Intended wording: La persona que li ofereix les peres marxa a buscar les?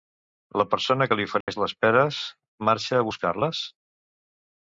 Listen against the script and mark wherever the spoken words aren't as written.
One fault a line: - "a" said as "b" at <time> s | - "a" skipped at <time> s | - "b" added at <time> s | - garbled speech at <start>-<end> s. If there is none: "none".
none